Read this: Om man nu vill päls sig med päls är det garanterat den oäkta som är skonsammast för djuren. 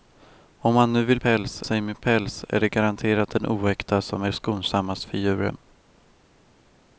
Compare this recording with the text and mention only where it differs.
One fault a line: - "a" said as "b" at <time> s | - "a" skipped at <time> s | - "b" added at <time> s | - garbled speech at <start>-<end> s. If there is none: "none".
none